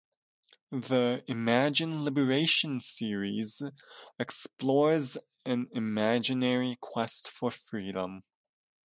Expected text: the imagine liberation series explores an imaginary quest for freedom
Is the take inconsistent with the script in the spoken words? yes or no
no